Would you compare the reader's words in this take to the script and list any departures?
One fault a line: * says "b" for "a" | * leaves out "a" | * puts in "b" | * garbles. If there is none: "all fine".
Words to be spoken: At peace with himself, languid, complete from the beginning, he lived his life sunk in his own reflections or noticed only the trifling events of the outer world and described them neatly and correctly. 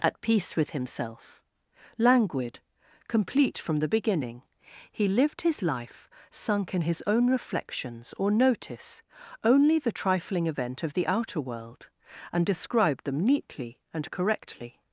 * says "notice" for "noticed"
* says "event" for "events"